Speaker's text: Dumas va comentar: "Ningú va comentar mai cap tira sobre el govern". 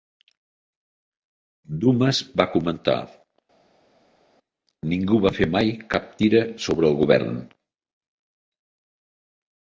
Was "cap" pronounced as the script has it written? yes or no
yes